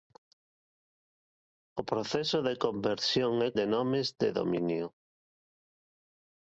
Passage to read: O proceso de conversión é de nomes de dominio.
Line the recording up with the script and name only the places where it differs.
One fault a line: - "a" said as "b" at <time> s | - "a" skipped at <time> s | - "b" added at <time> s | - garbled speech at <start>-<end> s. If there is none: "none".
none